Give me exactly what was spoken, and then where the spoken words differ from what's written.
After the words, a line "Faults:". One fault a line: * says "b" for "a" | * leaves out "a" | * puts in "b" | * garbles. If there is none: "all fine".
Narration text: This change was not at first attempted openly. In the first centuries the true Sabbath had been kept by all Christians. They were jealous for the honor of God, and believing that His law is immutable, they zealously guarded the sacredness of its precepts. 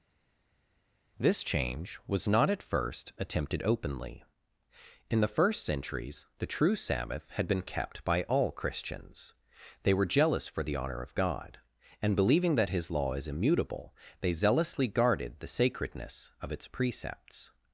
This change was not at first attempted openly. In the first centuries the true Sabbath had been kept by all Christians. They were jealous for the honor of God, and believing that His law is immutable, they zealously guarded the sacredness of its precepts.
Faults:
all fine